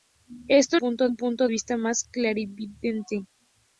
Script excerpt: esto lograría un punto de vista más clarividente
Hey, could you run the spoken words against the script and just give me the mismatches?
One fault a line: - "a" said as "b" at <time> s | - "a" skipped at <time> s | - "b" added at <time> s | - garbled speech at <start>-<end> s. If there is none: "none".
- "lograría" said as "punto" at 0.8 s
- "de" skipped at 1.5 s